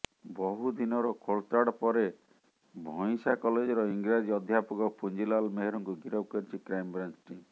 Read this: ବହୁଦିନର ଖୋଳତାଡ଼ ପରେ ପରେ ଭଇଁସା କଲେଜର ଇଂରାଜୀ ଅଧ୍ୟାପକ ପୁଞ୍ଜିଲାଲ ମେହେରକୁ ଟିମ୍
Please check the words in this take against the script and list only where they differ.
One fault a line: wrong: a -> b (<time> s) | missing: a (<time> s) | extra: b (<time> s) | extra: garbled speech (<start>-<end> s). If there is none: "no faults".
missing: ପରେ (2.0 s)
extra: ଗିରଫ କରିଛି କ୍ରାଇମବ୍ରାଞ୍ଚ (6.0 s)